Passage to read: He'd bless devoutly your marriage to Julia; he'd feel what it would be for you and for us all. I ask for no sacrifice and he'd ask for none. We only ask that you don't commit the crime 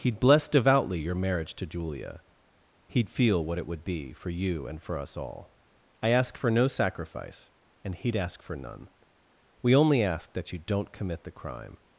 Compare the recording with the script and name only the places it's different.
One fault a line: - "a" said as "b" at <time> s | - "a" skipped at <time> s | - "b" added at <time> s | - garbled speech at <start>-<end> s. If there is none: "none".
none